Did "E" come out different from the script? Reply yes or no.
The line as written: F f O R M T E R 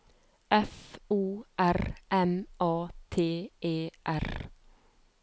no